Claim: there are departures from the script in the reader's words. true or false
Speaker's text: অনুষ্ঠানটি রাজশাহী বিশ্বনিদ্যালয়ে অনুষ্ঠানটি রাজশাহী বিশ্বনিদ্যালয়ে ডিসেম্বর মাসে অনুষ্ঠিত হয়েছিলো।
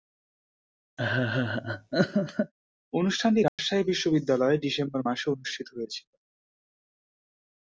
true